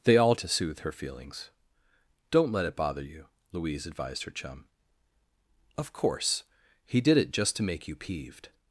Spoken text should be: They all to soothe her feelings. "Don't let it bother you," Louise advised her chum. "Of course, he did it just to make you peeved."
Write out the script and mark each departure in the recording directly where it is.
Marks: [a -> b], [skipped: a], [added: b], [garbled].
They all to soothe her feelings. "Don't let it bother you," Louise advised her chum. "Of course, he did it just to make you peeved."